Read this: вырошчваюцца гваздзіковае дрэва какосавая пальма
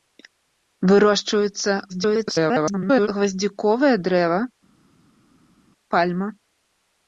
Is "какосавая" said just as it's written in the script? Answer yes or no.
no